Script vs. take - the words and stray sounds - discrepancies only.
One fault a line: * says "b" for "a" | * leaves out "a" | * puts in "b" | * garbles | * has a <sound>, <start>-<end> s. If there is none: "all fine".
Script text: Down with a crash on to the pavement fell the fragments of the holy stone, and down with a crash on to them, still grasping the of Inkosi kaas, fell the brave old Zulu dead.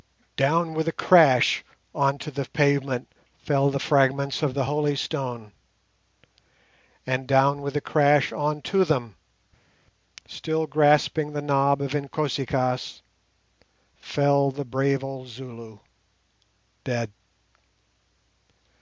* puts in "knob"